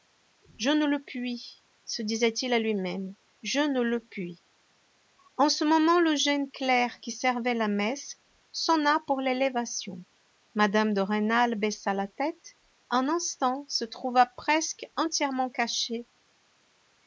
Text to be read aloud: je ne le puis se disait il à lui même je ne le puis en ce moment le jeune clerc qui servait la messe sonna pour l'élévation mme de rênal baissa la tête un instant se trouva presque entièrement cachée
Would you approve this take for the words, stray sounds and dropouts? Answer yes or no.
yes